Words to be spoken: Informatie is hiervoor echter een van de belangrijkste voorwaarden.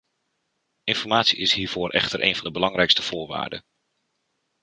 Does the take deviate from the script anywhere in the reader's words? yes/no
no